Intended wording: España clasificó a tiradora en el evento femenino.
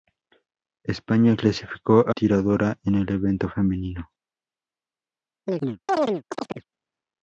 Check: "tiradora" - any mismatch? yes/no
no